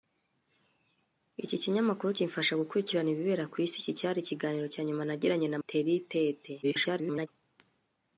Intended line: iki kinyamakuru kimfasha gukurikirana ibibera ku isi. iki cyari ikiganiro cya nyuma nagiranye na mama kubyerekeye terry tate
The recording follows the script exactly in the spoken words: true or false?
false